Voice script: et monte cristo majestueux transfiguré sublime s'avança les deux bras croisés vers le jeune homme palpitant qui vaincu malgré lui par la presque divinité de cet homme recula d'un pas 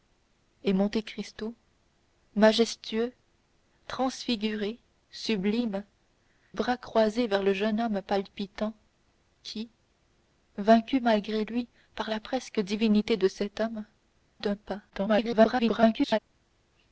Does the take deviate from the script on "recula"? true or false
true